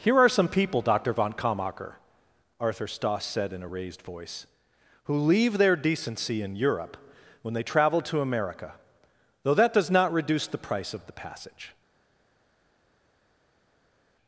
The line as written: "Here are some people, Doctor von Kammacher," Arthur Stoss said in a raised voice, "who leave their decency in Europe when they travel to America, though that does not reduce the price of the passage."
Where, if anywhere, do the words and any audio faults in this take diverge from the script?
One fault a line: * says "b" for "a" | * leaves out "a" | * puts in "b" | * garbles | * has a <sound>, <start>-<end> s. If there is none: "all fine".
all fine